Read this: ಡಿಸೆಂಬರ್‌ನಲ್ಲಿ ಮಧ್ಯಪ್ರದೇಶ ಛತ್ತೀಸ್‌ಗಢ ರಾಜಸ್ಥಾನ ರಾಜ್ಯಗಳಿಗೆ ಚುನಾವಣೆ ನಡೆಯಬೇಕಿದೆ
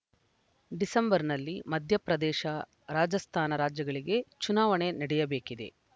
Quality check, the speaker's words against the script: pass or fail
fail